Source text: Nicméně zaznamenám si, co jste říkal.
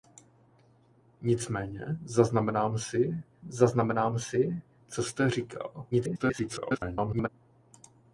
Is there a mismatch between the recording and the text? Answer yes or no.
yes